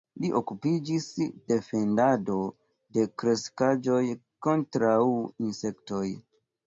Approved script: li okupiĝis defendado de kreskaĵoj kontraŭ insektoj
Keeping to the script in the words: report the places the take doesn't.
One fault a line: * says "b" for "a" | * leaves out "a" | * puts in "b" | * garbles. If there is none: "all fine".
all fine